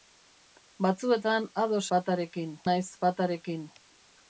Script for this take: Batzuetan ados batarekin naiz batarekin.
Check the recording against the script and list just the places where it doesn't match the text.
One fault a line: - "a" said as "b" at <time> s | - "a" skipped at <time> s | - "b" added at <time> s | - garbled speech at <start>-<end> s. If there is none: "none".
none